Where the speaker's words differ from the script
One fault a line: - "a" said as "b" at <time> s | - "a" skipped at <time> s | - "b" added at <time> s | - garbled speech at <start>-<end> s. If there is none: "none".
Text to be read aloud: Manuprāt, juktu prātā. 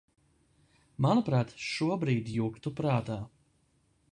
- "šobrīd" added at 1.6 s